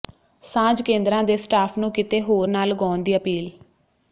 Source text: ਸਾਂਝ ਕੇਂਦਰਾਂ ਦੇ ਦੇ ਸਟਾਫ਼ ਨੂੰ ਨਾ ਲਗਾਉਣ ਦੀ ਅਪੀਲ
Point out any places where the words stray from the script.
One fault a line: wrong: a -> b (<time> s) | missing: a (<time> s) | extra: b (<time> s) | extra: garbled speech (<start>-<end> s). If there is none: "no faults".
missing: ਦੇ (1.4 s)
extra: ਕਿਤੇ ਹੋਰ (1.9 s)